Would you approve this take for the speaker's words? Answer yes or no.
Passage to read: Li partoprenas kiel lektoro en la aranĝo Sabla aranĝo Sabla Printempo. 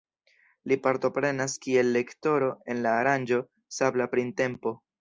no